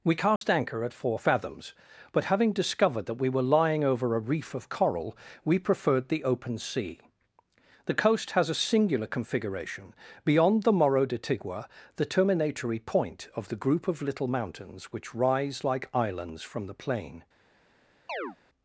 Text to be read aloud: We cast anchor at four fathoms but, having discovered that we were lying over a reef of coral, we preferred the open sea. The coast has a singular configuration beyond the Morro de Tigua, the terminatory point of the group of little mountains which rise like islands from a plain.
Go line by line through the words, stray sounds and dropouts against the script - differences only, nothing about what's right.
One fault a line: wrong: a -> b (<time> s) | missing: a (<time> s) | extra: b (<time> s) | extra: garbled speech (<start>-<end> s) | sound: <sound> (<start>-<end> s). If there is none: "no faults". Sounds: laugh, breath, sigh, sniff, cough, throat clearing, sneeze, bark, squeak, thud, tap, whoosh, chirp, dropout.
sound: dropout (0.4-0.4 s)
wrong: a -> the (16.6 s)
sound: chirp (18.1-18.4 s)